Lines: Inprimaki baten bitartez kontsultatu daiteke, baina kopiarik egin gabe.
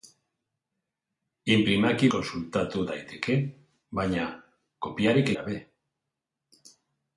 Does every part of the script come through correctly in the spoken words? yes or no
no